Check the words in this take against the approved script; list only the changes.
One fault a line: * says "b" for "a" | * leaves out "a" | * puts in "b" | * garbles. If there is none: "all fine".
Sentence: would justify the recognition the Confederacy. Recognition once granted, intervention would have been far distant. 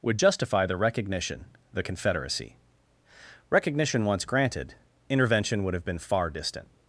all fine